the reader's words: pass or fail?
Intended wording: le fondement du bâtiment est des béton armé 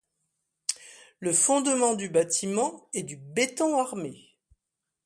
fail